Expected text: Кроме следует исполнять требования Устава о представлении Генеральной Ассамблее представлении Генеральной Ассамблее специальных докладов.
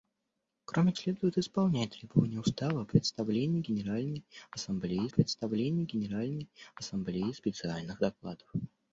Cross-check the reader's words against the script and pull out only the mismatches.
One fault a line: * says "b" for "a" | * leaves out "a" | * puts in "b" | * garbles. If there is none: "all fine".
all fine